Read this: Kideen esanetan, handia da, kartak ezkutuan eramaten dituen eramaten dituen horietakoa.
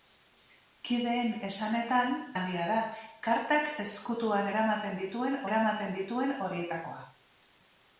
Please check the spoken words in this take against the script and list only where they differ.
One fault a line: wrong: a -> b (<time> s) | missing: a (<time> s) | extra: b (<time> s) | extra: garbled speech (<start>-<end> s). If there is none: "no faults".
no faults